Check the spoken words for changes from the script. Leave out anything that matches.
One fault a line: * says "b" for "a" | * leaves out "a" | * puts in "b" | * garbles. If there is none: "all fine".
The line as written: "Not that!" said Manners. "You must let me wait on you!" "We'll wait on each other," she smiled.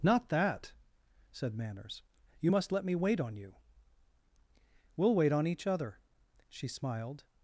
all fine